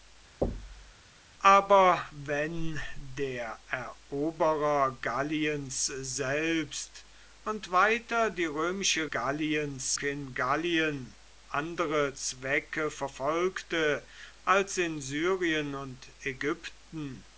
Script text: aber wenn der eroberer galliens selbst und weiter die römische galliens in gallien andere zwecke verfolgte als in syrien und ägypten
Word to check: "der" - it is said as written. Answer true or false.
true